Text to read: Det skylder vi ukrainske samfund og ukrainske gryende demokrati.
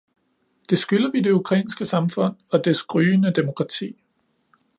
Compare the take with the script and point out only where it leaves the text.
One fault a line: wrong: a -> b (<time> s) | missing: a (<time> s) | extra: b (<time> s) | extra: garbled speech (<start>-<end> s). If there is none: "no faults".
extra: det (1.2 s)
wrong: ukrainske -> dets (2.6 s)